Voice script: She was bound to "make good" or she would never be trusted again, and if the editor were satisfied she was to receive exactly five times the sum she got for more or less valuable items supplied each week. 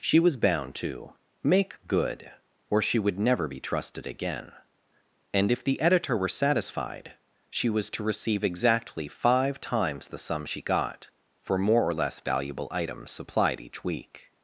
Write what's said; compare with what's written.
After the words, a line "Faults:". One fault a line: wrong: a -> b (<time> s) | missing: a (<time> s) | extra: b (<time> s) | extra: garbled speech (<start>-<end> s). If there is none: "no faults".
She was bound to "make good" or she would never be trusted again, and if the editor were satisfied she was to receive exactly five times the sum she got for more or less valuable items supplied each week.
Faults:
no faults